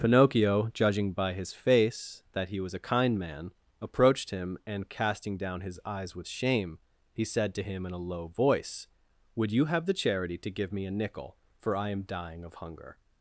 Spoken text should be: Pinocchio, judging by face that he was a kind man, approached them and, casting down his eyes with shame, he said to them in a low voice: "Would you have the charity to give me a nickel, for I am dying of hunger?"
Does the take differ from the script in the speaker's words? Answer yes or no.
yes